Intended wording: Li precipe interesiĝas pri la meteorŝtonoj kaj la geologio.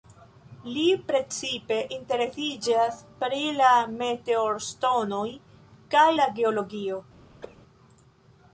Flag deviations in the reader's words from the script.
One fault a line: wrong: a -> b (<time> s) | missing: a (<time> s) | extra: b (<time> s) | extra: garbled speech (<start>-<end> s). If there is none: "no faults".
no faults